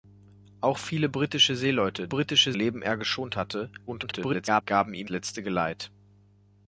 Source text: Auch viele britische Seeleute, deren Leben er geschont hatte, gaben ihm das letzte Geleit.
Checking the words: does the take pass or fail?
fail